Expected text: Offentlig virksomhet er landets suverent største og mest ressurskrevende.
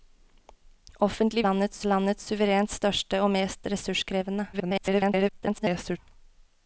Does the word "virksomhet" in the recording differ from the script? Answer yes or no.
yes